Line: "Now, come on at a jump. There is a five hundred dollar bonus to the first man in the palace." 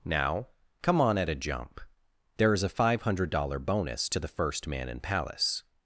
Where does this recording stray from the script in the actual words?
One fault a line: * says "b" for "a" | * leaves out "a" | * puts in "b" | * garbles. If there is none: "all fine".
* leaves out "the"